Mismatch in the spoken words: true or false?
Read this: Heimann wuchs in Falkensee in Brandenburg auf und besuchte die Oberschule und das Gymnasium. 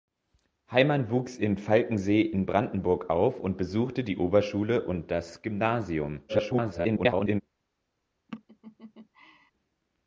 true